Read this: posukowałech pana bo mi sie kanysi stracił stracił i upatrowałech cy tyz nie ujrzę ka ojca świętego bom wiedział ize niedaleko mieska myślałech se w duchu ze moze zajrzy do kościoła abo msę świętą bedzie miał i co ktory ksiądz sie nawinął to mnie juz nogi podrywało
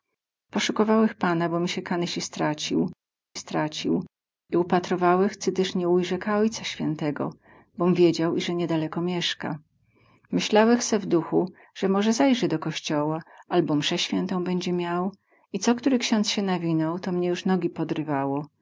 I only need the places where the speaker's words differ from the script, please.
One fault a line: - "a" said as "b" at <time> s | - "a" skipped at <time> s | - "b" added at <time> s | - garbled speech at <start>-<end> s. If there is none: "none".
none